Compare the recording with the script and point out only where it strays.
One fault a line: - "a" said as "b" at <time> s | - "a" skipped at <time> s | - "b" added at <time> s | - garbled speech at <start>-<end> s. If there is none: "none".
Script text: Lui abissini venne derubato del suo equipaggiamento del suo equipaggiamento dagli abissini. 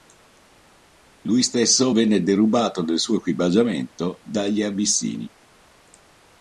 - "abissini" said as "stesso" at 1.4 s
- "del suo equipaggiamento" skipped at 4.2 s